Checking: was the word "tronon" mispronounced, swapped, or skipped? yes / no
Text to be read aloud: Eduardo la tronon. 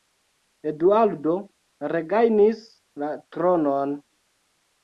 no